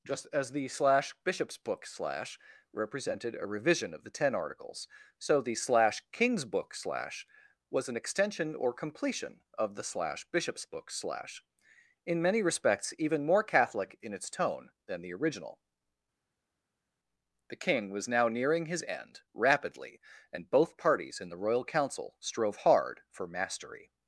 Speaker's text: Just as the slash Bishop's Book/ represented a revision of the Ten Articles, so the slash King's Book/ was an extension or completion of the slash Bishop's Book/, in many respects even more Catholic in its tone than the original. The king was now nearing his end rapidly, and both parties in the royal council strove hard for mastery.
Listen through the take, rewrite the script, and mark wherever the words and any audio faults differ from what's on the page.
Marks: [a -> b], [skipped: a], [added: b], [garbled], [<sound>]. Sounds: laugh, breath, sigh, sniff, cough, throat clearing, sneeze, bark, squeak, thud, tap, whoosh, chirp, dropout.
Just as the slash Bishop's Book/ [added: slash] represented a revision of the Ten Articles, so the slash King's Book/ [added: slash] was an extension or completion of the slash Bishop's Book/, [added: slash] in many respects even more Catholic in its tone than the original. The king was now nearing his end rapidly, and both parties in the royal council strove hard for mastery.